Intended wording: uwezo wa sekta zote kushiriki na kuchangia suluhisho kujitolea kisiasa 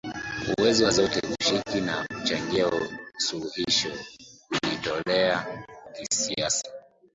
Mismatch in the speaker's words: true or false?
true